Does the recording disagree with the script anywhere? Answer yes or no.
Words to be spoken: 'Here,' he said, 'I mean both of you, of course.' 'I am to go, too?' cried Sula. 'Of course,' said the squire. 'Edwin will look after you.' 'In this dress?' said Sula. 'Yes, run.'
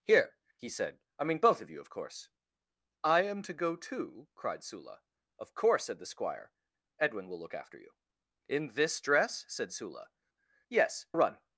no